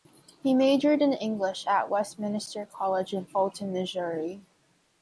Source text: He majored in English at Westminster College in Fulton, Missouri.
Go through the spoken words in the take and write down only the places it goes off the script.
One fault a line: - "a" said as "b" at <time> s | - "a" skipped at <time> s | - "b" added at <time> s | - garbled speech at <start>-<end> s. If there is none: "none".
none